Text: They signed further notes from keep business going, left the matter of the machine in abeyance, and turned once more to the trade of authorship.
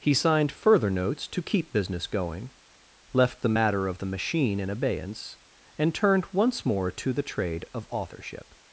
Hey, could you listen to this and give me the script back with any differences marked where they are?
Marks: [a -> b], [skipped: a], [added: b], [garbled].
[They -> He] signed further notes [from -> to] keep business going, left the matter of the machine in abeyance, and turned once more to the trade of authorship.